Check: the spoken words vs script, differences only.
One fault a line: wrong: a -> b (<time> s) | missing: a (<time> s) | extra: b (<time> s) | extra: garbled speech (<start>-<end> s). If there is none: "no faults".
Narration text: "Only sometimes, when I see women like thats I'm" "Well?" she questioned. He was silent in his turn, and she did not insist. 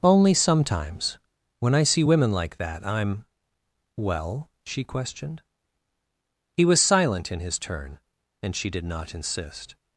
wrong: thats -> that (2.6 s)